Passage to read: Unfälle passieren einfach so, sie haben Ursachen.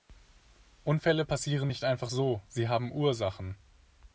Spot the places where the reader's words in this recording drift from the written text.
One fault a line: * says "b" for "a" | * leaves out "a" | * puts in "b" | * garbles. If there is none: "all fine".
* puts in "nicht"